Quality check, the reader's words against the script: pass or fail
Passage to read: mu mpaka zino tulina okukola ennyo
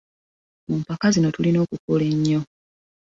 pass